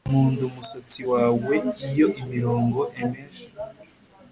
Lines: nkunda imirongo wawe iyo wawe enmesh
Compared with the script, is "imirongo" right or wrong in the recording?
wrong